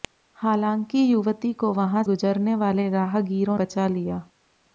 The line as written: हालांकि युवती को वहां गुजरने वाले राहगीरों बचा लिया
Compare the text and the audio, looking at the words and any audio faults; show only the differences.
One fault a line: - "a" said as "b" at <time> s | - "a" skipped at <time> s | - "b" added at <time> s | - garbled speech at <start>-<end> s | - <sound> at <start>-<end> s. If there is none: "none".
none